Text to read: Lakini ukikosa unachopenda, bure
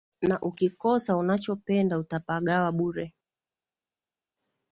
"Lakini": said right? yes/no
no